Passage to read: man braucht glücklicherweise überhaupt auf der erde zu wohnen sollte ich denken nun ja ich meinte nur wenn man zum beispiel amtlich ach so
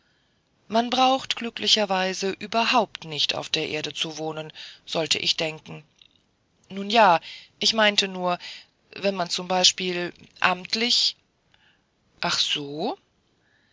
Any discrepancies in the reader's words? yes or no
yes